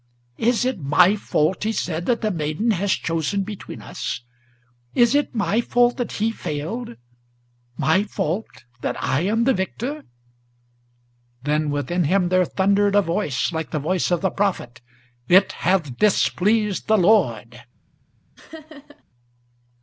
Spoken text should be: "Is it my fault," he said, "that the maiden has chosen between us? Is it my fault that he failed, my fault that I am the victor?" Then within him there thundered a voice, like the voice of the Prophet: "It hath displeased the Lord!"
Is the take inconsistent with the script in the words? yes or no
no